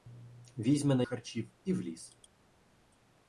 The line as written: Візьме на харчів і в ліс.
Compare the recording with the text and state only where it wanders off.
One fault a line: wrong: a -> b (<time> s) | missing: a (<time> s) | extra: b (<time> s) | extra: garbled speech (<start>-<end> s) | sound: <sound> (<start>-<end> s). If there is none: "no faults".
no faults